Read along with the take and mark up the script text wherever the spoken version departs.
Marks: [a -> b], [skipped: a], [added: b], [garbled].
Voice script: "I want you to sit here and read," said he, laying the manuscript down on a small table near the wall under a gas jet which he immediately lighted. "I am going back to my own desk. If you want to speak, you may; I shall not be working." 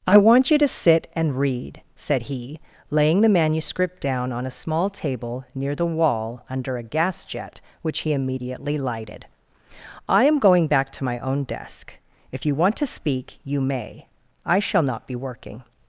"I want you to sit [skipped: here] and read," said he, laying the manuscript down on a small table near the wall under a gas jet which he immediately lighted. "I am going back to my own desk. If you want to speak, you may; I shall not be working."